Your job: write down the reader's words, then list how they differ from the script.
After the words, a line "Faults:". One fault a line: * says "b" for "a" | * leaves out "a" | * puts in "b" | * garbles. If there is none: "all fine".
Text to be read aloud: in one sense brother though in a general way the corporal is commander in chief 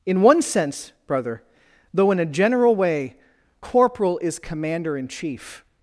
in one sense brother though in a general way corporal is commander in chief
Faults:
* leaves out "the"